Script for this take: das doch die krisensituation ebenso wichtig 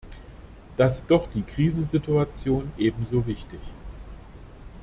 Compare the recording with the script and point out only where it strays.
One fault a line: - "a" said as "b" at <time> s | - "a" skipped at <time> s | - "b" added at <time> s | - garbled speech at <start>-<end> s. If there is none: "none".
none